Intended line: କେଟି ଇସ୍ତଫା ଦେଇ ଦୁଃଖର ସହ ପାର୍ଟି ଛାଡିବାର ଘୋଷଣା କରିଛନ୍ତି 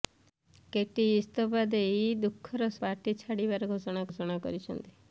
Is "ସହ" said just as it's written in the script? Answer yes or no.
no